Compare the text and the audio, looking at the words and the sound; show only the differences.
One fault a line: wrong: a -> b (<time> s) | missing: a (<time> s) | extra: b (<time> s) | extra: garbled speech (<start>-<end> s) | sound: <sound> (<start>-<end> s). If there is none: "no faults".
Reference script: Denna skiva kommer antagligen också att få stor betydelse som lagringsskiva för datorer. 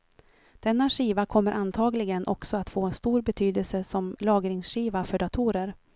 no faults